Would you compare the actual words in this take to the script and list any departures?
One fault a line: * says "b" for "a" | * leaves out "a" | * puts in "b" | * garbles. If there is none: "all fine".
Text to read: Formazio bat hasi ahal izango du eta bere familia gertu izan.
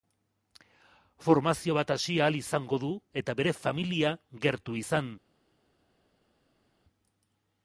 all fine